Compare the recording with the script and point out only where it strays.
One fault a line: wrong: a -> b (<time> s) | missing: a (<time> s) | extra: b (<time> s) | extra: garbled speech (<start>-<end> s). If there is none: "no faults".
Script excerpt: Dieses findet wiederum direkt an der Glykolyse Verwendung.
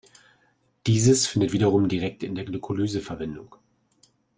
wrong: an -> in (2.2 s)